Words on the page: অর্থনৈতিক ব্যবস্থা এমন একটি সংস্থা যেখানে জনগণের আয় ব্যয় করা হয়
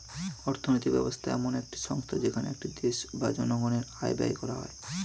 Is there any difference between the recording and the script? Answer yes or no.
yes